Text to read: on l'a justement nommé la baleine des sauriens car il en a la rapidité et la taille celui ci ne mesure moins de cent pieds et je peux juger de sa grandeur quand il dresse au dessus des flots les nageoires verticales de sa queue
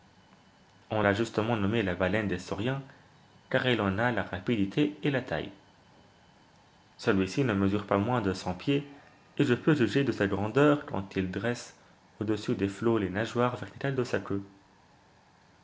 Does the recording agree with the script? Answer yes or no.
no